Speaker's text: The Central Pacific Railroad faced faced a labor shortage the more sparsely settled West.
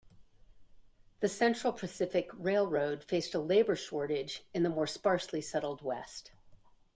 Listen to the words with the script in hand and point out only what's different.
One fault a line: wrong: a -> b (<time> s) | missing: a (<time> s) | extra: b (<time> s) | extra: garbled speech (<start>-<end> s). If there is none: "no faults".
missing: faced (3.4 s)
extra: in (4.5 s)